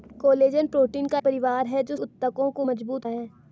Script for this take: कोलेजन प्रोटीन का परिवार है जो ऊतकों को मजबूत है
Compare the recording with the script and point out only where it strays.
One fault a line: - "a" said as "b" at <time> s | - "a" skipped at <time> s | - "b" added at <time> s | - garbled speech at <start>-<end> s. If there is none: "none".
none